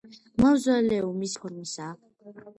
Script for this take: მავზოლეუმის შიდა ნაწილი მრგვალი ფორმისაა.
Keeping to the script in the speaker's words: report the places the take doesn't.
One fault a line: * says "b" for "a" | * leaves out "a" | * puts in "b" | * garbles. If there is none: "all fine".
* leaves out "შიდა ნაწილი მრგვალი"